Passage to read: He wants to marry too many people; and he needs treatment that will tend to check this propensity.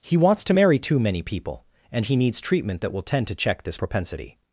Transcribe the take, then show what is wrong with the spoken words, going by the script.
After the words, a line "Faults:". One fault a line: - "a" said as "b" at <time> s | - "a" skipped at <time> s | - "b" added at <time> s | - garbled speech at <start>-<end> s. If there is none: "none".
He wants to marry too many people; and he needs treatment that will tend to check this propensity.
Faults:
none